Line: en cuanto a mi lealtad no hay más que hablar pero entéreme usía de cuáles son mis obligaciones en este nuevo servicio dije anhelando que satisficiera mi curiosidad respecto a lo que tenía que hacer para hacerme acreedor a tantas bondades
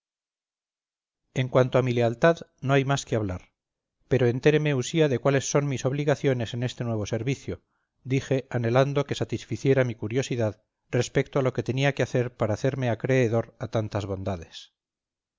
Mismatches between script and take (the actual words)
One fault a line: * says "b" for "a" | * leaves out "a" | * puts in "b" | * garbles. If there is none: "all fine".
all fine